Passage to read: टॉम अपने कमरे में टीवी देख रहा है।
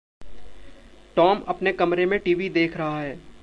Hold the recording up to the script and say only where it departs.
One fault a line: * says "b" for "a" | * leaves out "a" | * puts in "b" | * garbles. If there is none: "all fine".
all fine